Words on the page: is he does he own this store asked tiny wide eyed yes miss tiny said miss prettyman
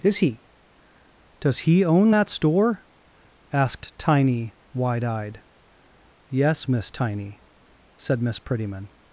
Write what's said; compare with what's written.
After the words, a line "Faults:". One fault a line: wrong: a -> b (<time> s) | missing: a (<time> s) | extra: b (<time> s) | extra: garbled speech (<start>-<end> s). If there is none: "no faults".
is he does he own that store asked tiny wide eyed yes miss tiny said miss prettyman
Faults:
wrong: this -> that (2.1 s)